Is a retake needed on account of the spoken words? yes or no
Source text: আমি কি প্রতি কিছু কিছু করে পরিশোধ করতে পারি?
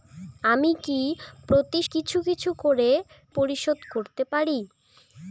no